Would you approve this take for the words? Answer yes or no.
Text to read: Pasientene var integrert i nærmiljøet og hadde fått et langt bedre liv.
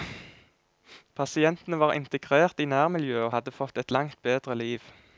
yes